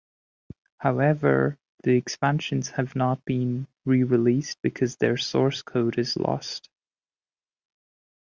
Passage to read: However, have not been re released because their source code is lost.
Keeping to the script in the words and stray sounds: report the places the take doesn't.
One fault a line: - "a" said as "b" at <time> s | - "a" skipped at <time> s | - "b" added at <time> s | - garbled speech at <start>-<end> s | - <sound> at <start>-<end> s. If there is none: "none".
- "the expansions" added at 1.8 s